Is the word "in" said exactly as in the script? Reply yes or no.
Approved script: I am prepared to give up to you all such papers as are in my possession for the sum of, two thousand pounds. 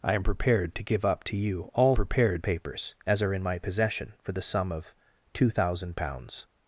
yes